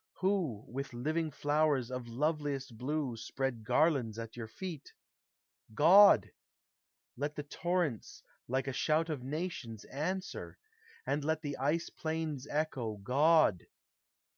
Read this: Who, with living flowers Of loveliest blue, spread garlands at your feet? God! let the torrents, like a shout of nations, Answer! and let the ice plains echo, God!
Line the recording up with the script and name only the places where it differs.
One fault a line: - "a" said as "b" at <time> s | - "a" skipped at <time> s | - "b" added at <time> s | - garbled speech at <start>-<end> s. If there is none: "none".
none